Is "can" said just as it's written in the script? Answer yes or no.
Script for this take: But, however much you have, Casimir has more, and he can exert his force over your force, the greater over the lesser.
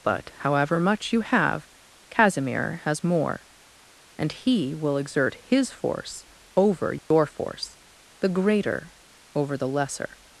no